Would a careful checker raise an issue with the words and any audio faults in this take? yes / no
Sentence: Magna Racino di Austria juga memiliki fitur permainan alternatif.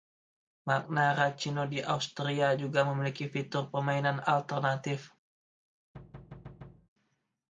yes